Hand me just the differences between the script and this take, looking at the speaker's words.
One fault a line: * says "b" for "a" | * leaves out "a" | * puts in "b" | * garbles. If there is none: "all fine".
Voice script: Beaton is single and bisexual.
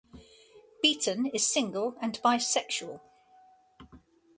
all fine